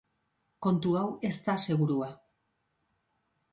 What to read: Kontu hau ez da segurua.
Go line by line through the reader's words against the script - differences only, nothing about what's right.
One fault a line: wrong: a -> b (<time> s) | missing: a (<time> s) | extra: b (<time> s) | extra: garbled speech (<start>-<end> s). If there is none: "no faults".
no faults